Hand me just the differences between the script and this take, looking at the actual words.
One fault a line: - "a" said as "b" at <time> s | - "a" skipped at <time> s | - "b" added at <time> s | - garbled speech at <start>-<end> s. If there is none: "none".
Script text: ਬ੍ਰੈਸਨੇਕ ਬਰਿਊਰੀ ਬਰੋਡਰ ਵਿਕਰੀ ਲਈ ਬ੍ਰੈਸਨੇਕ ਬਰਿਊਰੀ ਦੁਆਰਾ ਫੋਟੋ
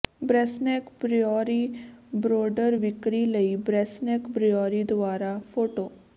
none